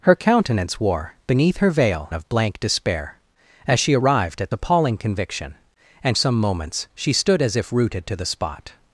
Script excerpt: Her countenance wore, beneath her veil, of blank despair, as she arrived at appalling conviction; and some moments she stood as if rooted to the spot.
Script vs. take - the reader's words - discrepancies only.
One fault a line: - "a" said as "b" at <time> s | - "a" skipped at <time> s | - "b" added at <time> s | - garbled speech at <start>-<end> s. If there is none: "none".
none